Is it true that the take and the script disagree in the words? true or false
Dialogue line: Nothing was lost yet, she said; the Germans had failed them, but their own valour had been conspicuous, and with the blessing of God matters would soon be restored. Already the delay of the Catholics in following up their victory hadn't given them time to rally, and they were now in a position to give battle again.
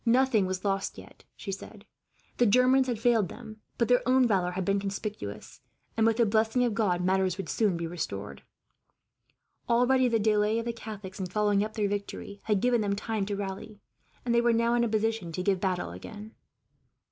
true